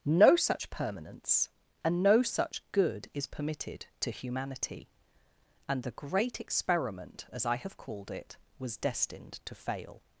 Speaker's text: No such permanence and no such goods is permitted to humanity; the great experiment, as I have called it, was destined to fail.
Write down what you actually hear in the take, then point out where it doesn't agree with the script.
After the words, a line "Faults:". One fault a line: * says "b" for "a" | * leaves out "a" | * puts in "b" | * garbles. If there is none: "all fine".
No such permanence and no such good is permitted to humanity; and the great experiment, as I have called it, was destined to fail.
Faults:
* says "good" for "goods"
* puts in "and"